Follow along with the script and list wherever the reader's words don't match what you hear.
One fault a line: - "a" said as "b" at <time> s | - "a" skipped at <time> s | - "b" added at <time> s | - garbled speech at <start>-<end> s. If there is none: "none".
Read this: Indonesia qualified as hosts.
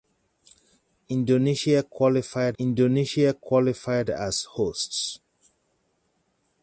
- "indonesia qualified" added at 2.6 s